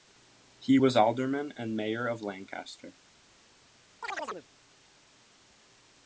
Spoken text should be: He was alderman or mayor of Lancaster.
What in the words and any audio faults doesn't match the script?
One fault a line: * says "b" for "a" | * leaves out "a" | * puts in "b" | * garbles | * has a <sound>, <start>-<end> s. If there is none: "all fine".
* says "and" for "or"
* has a chirp, 4.0-4.5 s